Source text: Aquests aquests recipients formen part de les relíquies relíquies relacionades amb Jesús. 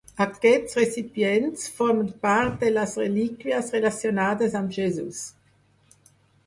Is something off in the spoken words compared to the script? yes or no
yes